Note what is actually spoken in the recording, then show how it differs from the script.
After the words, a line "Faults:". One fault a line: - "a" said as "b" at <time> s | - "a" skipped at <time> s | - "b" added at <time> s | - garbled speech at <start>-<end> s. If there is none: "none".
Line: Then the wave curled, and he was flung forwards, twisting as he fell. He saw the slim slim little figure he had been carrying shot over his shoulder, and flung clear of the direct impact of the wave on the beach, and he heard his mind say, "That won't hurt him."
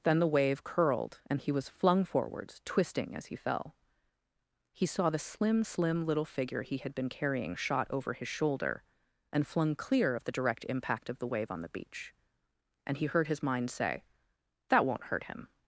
Then the wave curled, and he was flung forwards, twisting as he fell. He saw the slim slim little figure he had been carrying shot over his shoulder, and flung clear of the direct impact of the wave on the beach, and he heard his mind say, "That won't hurt him."
Faults:
none